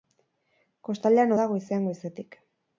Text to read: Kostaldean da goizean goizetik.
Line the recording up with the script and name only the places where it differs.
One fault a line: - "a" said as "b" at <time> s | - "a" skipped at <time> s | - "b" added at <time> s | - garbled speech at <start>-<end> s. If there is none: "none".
none